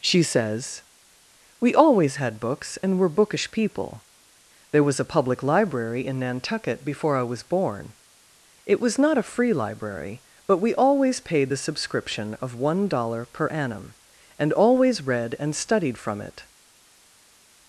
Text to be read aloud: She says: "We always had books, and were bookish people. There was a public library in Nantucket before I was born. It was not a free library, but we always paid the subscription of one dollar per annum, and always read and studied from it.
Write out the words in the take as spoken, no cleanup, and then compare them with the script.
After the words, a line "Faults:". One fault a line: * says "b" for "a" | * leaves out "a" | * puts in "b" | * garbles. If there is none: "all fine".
She says: "We always had books, and were bookish people. There was a public library in Nantucket before I was born. It was not a free library, but we always paid the subscription of one dollar per annum, and always read and studied from it.
Faults:
all fine